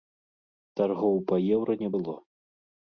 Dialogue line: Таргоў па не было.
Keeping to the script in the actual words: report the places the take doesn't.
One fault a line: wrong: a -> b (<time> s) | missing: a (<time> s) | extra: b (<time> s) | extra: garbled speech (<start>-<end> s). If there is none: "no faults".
extra: еўра (1.6 s)